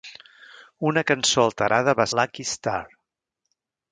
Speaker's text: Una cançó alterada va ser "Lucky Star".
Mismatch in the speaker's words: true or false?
true